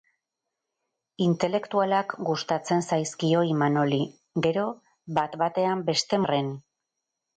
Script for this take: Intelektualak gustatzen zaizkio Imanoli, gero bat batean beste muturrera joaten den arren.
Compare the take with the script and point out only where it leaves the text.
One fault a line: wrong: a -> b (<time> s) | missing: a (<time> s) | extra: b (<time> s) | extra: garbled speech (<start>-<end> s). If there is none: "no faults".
missing: muturrera joaten den (6.2 s)